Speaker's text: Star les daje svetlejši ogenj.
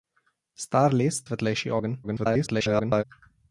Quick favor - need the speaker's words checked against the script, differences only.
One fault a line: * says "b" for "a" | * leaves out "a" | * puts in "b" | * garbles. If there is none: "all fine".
* leaves out "daje"
* garbles